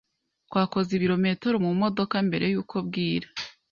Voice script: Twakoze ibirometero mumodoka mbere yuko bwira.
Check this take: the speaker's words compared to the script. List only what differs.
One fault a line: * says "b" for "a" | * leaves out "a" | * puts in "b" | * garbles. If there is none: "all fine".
all fine